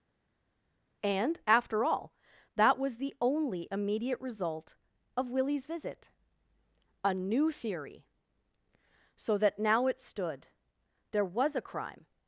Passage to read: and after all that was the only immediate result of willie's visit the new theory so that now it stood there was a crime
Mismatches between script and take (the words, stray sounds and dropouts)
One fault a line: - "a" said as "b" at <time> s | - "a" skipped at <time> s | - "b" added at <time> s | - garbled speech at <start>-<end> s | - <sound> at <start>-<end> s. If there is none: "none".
- "the" said as "a" at 7.0 s